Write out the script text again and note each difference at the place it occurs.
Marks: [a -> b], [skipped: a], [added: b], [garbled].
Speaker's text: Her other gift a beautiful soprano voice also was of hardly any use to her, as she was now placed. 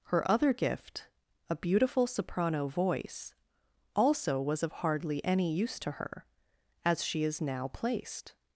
Her other gift a beautiful soprano voice also was of hardly any use to her, as she [was -> is] now placed.